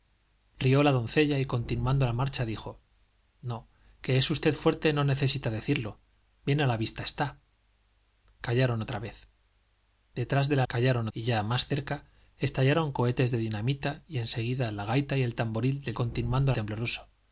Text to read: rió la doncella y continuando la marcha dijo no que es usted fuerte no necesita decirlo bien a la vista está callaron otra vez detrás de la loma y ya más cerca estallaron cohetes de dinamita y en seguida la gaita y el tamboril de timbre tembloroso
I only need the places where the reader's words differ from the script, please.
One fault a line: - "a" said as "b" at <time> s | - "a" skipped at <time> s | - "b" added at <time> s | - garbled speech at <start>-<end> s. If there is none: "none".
- "loma" said as "callaron" at 10.7 s
- "timbre" said as "continuando" at 15.9 s